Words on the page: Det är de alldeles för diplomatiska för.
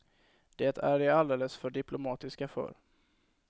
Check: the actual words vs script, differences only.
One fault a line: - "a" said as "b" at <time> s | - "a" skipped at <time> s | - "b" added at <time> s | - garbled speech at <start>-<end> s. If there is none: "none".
none